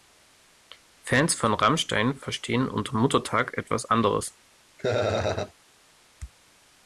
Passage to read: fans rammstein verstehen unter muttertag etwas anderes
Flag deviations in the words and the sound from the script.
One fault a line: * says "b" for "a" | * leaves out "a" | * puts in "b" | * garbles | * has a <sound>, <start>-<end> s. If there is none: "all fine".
* puts in "von"
* has a laugh, 4.8-5.5 s